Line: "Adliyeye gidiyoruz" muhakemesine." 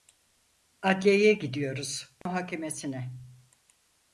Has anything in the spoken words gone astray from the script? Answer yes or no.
no